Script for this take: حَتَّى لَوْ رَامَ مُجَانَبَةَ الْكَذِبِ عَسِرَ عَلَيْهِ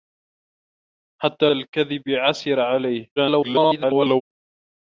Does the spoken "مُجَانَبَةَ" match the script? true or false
false